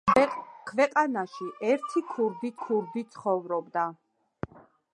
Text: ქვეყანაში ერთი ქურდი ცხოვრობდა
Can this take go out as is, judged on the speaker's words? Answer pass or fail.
fail